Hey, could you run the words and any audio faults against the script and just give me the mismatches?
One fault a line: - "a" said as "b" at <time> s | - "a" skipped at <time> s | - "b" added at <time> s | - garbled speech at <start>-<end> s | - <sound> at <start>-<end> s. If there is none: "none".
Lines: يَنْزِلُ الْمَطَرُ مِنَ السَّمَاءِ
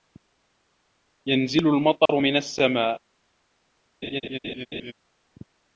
- dropout at 2.1-2.1 s
- laugh at 4.0-4.9 s